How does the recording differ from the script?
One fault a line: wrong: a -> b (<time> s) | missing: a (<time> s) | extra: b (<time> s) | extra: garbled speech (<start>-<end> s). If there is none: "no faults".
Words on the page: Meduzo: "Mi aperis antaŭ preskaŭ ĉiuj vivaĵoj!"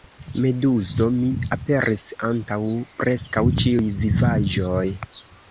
no faults